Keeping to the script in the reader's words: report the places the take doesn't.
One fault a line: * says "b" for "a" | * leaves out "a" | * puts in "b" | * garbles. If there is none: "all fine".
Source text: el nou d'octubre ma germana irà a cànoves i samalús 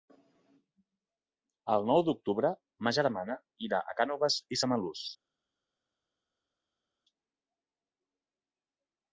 all fine